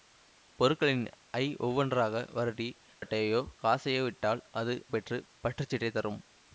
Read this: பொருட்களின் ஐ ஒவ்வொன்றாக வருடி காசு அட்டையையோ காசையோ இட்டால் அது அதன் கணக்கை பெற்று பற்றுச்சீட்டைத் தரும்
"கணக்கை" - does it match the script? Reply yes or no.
no